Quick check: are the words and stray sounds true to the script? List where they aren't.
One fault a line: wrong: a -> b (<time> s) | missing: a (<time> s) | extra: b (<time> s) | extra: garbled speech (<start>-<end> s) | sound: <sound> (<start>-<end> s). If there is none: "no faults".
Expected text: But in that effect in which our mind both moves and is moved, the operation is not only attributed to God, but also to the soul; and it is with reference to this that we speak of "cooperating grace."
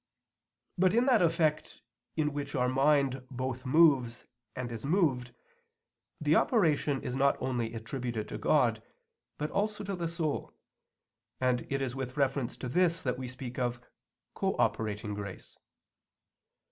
no faults